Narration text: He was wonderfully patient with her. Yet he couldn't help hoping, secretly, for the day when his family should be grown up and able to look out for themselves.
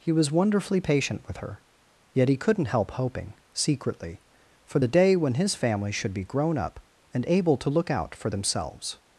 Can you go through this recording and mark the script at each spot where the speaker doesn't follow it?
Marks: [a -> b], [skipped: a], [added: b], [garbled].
He was wonderfully patient with her. Yet he couldn't help hoping, secretly, for the day when his family should be grown up and able to look out for themselves.